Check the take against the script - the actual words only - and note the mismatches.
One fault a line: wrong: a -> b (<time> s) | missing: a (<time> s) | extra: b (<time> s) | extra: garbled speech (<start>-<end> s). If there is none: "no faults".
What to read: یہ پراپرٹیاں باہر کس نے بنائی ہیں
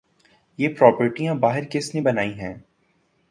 no faults